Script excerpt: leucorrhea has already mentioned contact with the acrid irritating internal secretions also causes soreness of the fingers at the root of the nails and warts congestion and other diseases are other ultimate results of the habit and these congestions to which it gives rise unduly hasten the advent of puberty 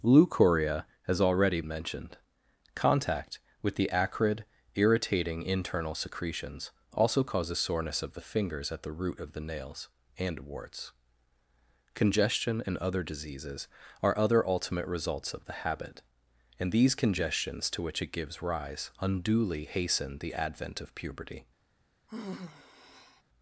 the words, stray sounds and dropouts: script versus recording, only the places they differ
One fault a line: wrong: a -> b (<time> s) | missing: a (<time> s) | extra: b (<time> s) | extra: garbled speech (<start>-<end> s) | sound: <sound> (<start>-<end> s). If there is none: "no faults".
sound: sigh (22.1-23.2 s)